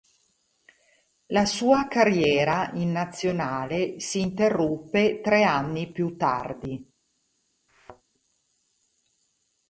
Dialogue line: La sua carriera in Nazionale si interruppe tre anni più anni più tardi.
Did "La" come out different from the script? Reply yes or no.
no